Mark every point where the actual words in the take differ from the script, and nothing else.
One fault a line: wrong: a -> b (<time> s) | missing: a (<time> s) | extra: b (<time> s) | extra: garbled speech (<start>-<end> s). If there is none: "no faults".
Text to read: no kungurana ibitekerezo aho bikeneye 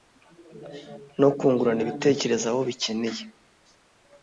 no faults